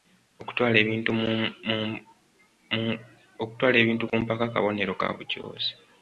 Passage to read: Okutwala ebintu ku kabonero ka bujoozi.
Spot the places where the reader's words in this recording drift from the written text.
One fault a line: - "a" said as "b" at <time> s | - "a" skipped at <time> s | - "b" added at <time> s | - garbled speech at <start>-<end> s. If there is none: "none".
- "mpaka" added at 4.2 s